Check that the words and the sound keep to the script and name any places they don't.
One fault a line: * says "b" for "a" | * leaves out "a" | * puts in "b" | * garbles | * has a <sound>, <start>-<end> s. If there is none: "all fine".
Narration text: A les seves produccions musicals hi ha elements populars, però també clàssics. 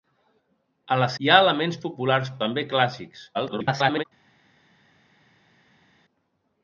* leaves out "seves produccions musicals"
* leaves out "però"
* garbles